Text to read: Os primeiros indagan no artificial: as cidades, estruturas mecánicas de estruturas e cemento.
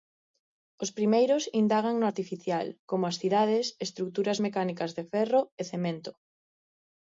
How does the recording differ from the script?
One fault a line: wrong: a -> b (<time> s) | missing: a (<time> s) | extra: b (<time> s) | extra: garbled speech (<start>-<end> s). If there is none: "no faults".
extra: como (2.9 s)
wrong: estruturas -> ferro (5.1 s)